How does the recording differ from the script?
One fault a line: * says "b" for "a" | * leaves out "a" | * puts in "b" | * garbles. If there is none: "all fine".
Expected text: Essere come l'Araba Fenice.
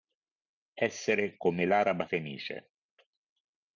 all fine